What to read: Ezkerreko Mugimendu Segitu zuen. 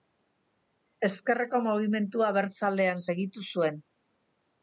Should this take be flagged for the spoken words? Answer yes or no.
yes